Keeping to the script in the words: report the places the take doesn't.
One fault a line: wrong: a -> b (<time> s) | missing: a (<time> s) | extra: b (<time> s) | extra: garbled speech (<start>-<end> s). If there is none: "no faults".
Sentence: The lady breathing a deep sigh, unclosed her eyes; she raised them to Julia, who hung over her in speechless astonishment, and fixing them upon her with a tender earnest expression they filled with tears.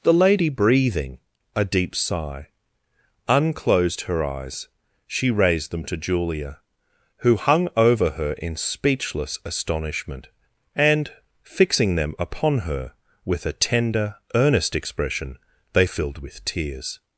no faults